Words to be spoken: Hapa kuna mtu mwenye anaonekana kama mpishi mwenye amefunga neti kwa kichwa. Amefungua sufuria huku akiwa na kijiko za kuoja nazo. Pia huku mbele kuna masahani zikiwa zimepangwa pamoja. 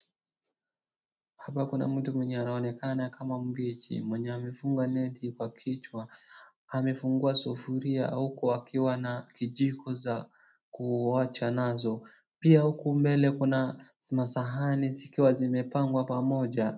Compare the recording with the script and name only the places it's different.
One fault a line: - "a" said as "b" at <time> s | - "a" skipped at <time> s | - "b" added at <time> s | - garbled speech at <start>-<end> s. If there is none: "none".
none